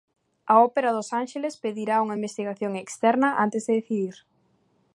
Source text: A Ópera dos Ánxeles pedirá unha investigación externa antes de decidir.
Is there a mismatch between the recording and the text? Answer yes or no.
no